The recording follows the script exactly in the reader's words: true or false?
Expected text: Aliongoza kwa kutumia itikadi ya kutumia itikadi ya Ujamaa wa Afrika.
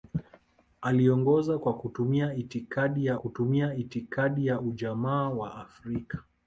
true